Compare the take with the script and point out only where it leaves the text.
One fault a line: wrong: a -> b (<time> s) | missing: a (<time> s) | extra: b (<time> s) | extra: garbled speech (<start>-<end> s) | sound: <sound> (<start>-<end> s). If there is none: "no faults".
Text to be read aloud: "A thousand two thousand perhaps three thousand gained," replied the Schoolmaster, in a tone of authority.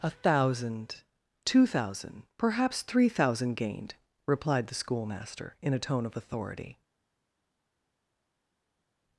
no faults